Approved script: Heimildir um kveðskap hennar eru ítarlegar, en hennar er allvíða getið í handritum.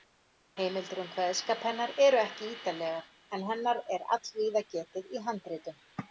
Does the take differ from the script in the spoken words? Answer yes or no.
yes